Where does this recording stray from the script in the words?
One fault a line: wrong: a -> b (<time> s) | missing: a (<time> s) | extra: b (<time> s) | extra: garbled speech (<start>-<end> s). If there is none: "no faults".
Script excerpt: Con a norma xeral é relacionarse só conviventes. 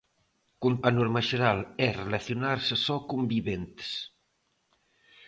no faults